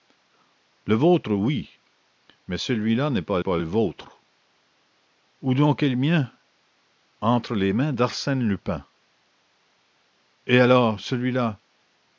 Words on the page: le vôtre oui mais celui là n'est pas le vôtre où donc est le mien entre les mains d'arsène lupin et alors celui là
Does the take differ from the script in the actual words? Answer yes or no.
yes